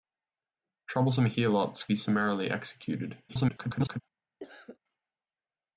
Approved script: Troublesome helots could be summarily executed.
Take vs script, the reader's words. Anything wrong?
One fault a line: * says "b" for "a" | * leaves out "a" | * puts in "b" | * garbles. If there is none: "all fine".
* leaves out "could"
* garbles